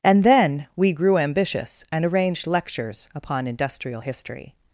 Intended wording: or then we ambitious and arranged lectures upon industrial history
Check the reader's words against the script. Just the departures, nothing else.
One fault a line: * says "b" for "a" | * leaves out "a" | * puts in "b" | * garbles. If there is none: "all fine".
* says "and" for "or"
* puts in "grew"